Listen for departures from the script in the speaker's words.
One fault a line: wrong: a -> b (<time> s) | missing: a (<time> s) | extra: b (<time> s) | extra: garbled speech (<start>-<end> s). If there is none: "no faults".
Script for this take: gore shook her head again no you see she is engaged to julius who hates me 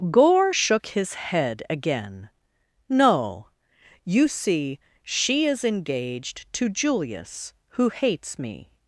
wrong: her -> his (0.9 s)